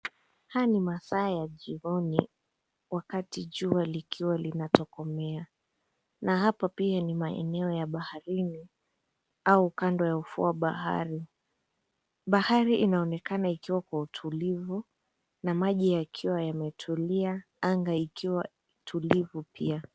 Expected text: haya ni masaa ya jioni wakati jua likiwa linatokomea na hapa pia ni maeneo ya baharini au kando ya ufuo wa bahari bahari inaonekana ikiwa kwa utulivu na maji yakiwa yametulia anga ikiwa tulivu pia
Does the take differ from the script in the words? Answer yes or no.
no